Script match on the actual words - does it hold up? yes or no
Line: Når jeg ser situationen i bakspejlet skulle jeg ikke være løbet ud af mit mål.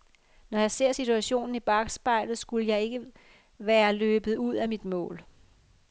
yes